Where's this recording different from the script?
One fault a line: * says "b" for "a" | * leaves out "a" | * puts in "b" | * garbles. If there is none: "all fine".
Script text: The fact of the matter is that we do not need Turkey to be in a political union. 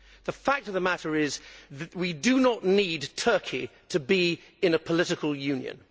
all fine